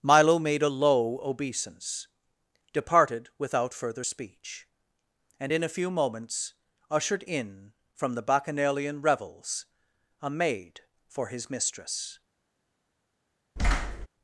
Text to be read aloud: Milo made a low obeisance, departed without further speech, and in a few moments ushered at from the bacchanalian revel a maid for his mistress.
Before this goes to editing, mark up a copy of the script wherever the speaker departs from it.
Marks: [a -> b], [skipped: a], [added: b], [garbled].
Milo made a low obeisance, departed without further speech, and in a few moments ushered [at -> in] from the bacchanalian [revel -> revels] a maid for his mistress.